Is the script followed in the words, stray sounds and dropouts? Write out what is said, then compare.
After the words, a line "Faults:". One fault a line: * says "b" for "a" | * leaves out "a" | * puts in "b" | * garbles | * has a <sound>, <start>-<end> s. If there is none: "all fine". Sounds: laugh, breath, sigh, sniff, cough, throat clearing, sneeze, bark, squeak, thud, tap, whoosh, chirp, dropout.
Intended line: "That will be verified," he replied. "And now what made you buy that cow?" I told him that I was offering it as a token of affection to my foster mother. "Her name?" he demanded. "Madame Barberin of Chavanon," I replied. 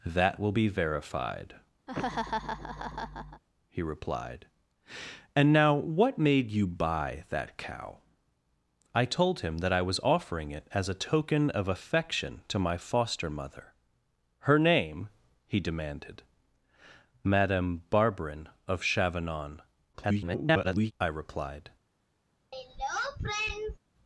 "That will be verified," he replied. "And now what made you buy that cow?" I told him that I was offering it as a token of affection to my foster mother. "Her name?" he demanded. "Madame Barberin of Chavanon," [garbled] I replied.
Faults:
* has a laugh, 1.9-3.4 s
* garbles
* has a throat clearing, 22.5-23.8 s